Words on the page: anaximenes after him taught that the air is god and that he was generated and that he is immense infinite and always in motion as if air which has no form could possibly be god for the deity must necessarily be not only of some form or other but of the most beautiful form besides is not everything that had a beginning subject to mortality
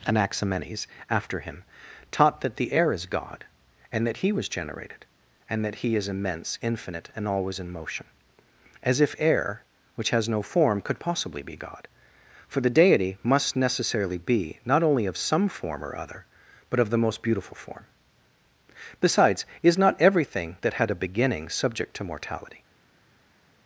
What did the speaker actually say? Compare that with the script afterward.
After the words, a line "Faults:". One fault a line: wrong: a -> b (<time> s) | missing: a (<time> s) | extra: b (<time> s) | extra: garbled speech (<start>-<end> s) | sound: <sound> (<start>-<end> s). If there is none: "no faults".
anaximenes after him taught that the air is god and that he was generated and that he is immense infinite and always in motion as if air which has no form could possibly be god for the deity must necessarily be not only of some form or other but of the most beautiful form besides is not everything that had a beginning subject to mortality
Faults:
no faults